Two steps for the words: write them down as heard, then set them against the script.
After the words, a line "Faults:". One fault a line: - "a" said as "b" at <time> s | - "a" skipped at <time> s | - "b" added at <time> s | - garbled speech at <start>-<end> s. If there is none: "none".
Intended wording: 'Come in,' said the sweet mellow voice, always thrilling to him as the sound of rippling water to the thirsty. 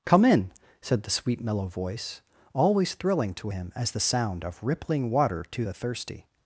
'Come in,' said the sweet mellow voice, always thrilling to him as the sound of rippling water to the thirsty.
Faults:
none